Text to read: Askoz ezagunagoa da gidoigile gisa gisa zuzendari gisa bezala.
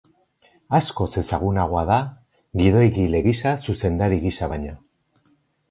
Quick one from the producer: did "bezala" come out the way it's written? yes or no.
no